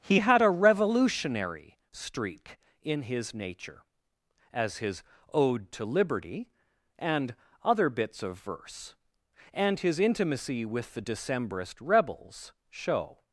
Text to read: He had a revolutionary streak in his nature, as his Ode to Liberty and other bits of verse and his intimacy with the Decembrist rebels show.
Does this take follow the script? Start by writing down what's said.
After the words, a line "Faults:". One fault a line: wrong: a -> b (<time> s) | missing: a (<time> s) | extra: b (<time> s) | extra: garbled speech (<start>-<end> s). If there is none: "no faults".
He had a revolutionary streak in his nature, as his Ode to Liberty and other bits of verse and his intimacy with the Decembrist rebels show.
Faults:
no faults